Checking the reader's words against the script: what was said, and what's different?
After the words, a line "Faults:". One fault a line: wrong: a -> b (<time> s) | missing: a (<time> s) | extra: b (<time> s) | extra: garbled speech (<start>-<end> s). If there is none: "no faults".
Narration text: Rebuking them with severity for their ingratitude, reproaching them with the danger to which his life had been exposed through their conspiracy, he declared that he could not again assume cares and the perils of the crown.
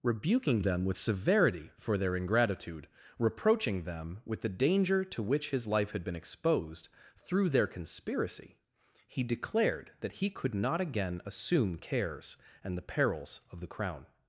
Rebuking them with severity for their ingratitude, reproaching them with the danger to which his life had been exposed through their conspiracy, he declared that he could not again assume cares and the perils of the crown.
Faults:
no faults